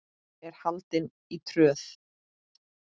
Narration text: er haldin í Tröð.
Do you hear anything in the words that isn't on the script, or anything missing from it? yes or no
no